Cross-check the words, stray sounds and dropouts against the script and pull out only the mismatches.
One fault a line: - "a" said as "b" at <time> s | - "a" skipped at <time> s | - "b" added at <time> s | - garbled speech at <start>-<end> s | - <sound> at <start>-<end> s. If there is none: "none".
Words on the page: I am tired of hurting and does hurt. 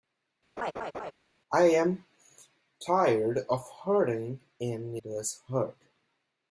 - laugh at 0.6-1.1 s